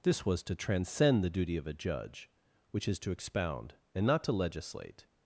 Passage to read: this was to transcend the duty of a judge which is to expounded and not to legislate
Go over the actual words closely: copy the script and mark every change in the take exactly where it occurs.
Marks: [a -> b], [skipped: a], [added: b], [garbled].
this was to transcend the duty of a judge which is to [expounded -> expound] and not to legislate